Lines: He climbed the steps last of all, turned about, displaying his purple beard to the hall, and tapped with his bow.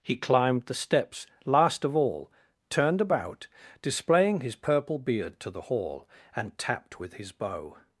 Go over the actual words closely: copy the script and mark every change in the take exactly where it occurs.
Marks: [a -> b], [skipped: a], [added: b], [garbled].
He climbed the steps last of all, turned about, displaying his purple beard to the hall, and tapped with his bow.